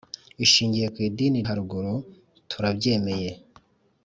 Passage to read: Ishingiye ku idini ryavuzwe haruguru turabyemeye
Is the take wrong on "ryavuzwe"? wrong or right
wrong